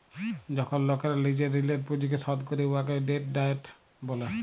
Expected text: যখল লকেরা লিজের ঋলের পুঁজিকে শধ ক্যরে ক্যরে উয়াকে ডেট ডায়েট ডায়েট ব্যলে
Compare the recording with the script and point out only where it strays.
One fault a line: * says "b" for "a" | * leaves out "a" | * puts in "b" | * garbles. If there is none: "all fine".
* leaves out "ক্যরে"
* leaves out "ডায়েট"